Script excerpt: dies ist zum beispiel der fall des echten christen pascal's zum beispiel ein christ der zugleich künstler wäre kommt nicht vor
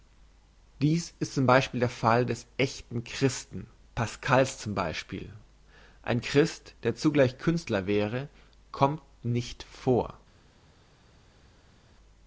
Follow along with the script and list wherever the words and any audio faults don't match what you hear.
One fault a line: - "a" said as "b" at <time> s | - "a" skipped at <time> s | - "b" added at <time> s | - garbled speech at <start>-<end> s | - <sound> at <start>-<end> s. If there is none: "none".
none